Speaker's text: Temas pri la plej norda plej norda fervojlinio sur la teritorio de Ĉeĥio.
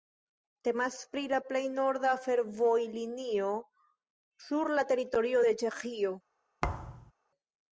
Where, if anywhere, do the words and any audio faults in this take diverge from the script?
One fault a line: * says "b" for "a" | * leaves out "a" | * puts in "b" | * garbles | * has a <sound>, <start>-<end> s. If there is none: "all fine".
* leaves out "plej norda"
* has a thud, 6.6-7.1 s